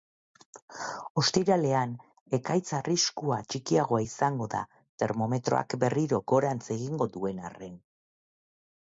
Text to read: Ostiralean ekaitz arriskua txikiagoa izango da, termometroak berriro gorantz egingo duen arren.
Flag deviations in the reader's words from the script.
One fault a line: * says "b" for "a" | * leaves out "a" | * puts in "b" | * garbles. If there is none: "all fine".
all fine